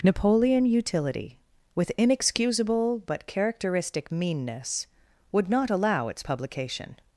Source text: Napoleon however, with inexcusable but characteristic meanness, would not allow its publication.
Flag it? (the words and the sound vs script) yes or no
yes